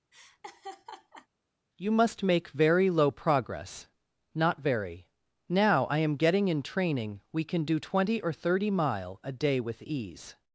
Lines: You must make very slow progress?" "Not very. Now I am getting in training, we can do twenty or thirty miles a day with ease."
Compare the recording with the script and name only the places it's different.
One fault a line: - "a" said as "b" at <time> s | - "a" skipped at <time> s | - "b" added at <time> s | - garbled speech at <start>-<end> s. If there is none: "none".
- "slow" said as "low" at 2.9 s
- "miles" said as "mile" at 8.7 s